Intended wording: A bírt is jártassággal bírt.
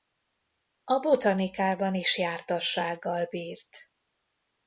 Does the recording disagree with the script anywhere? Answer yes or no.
yes